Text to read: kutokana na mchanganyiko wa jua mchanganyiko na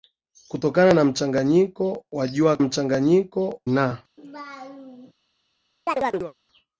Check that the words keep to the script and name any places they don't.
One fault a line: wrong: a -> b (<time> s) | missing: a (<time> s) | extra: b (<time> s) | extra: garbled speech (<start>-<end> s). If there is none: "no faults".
no faults